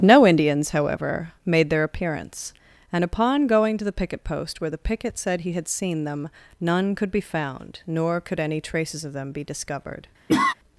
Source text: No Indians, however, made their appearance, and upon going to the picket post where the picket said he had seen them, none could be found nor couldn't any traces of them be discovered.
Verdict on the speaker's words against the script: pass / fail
fail